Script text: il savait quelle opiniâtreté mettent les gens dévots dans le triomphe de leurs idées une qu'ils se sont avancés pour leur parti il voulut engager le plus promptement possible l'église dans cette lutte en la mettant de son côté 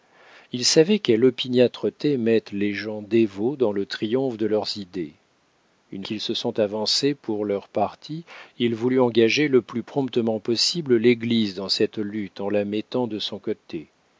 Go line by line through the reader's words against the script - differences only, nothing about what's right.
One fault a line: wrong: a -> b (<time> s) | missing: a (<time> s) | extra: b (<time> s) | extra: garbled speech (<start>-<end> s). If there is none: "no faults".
no faults